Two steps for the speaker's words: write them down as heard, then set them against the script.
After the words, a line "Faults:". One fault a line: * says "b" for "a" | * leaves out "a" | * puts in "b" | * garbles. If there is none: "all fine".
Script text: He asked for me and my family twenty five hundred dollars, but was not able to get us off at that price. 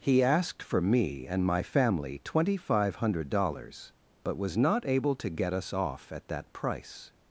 He asked for me and my family twenty five hundred dollars, but was not able to get us off at that price.
Faults:
all fine